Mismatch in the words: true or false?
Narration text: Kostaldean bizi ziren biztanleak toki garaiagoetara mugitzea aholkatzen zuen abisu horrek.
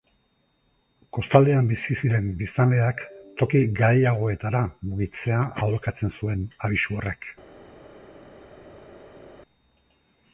false